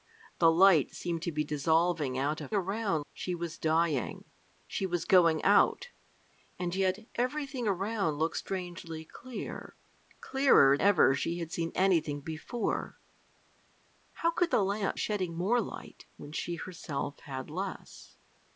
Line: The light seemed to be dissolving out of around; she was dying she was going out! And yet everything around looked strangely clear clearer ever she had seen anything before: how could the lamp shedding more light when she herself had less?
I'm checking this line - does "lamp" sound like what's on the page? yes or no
yes